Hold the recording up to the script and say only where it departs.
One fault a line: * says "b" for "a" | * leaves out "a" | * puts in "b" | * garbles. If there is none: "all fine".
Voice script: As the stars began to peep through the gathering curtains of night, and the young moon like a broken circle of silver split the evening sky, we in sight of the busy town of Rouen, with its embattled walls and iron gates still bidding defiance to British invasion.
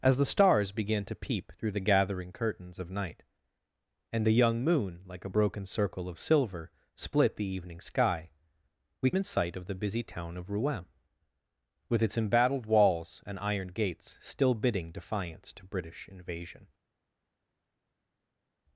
all fine